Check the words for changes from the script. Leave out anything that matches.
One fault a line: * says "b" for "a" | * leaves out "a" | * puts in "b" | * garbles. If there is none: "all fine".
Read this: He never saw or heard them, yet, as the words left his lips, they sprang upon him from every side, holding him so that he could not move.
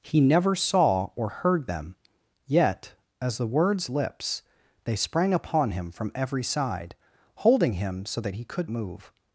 * leaves out "left his"
* leaves out "not"